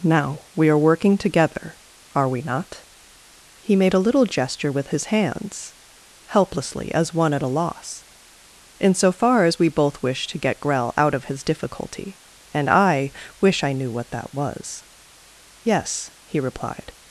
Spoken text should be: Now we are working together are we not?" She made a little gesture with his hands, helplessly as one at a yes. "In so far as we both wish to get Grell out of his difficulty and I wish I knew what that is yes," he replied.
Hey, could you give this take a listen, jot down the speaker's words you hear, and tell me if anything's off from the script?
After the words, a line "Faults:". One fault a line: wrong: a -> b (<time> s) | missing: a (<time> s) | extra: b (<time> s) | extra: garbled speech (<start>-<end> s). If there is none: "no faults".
Now we are working together are we not?" He made a little gesture with his hands, helplessly as one at a loss. "In so far as we both wish to get Grell out of his difficulty and I wish I knew what that was yes," he replied.
Faults:
wrong: She -> He (3.6 s)
wrong: yes -> loss (7.5 s)
wrong: is -> was (14.3 s)